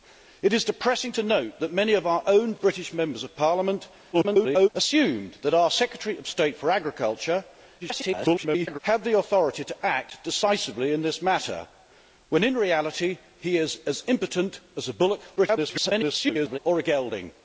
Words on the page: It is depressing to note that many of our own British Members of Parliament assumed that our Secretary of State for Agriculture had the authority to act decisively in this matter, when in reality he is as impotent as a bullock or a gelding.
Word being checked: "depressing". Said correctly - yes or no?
yes